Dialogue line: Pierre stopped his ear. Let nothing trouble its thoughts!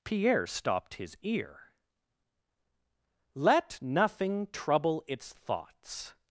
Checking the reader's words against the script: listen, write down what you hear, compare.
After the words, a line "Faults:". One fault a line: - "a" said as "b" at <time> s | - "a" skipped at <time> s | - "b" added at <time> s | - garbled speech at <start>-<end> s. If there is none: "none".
Pierre stopped his ear. Let nothing trouble its thoughts!
Faults:
none